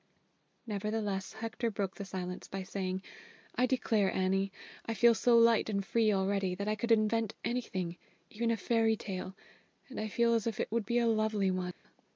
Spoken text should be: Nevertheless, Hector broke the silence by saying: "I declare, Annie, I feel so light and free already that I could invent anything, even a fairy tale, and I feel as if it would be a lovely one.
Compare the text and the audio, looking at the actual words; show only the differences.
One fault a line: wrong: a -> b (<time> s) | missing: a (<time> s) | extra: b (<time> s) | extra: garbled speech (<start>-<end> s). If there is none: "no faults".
no faults